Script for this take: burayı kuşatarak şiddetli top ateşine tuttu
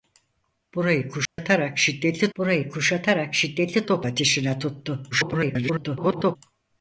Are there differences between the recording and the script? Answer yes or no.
yes